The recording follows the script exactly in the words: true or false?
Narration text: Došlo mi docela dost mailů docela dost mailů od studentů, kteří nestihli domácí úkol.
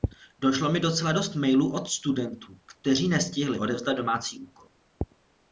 false